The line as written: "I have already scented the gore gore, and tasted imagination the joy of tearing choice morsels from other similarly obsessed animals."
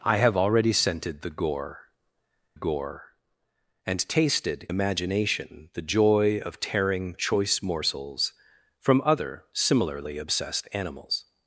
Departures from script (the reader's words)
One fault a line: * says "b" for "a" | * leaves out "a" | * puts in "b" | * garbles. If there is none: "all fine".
all fine